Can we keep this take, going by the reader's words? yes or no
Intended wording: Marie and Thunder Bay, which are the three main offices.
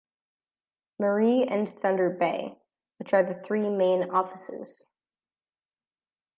yes